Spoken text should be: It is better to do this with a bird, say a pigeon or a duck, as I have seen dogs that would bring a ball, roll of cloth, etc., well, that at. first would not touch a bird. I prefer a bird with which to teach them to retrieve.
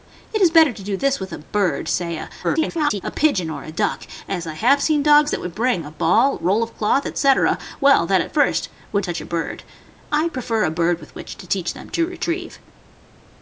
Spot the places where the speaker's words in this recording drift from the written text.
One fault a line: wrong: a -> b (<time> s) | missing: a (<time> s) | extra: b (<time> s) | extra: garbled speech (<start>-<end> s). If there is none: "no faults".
extra: garbled speech (2.4-3.0 s)
missing: not (9.1 s)